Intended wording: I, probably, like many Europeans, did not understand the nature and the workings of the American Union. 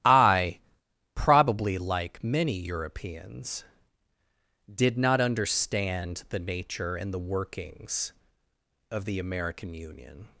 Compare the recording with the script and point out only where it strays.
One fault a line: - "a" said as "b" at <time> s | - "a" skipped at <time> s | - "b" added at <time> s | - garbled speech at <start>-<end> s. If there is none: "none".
none